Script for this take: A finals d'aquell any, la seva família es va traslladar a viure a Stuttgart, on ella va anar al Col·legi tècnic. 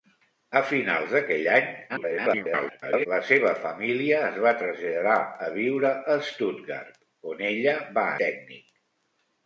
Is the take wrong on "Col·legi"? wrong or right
wrong